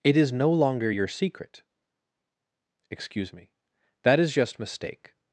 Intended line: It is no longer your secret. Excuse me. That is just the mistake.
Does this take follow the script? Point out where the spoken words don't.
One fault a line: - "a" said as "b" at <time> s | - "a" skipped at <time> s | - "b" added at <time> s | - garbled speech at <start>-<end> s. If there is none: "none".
- "the" skipped at 4.6 s